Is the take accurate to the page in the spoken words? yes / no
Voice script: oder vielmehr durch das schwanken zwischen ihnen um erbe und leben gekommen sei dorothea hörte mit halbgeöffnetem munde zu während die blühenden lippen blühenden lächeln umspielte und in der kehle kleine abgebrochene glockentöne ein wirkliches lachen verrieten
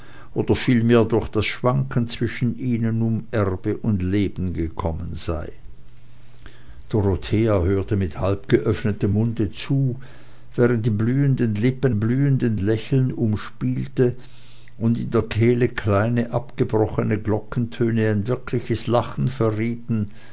yes